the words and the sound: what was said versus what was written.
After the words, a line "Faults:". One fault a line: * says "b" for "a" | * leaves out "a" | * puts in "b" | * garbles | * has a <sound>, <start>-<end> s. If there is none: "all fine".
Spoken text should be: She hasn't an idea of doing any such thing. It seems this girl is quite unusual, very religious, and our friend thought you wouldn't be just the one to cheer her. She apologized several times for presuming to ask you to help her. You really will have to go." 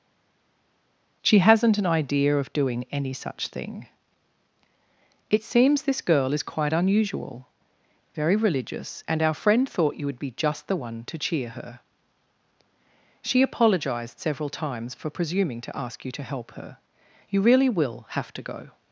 She hasn't an idea of doing any such thing. It seems this girl is quite unusual, very religious, and our friend thought you would be just the one to cheer her. She apologized several times for presuming to ask you to help her. You really will have to go."
Faults:
* says "would" for "wouldn't"